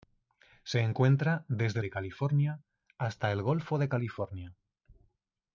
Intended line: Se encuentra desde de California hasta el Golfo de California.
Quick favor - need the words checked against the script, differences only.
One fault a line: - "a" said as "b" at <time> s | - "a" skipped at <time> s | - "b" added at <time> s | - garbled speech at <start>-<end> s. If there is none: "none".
none